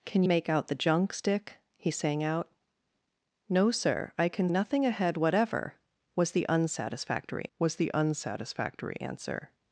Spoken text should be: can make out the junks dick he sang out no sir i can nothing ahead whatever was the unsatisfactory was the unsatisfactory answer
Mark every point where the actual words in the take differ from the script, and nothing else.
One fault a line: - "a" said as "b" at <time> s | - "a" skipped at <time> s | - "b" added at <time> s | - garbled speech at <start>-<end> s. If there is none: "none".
none